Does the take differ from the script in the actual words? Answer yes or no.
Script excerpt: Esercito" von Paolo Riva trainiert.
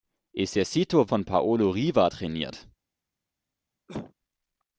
no